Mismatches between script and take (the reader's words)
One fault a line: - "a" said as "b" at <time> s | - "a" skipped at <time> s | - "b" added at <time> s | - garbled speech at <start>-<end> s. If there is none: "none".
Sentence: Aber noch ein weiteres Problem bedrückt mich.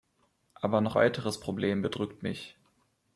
- "ein" skipped at 1.0 s